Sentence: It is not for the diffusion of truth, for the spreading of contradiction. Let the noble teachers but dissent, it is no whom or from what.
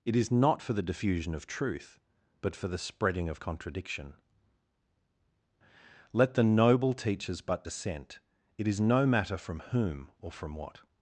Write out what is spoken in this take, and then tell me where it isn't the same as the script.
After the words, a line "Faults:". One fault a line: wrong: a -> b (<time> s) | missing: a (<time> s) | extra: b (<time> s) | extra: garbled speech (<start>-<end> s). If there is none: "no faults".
It is not for the diffusion of truth, but for the spreading of contradiction. Let the noble teachers but dissent, it is no matter from whom or from what.
Faults:
extra: but (2.4 s)
extra: matter from (9.1 s)